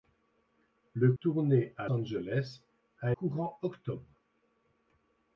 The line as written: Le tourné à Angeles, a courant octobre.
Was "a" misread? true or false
false